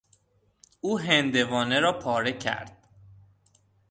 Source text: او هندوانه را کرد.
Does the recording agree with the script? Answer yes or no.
no